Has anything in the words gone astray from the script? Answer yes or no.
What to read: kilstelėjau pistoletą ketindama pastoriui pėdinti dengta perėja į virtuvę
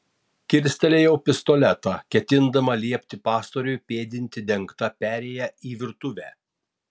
yes